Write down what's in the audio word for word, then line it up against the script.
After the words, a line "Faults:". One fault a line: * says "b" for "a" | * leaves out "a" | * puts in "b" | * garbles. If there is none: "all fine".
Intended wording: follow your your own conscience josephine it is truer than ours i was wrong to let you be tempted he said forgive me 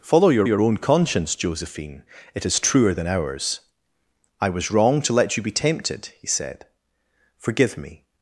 follow your your own conscience josephine it is truer than ours i was wrong to let you be tempted he said forgive me
Faults:
all fine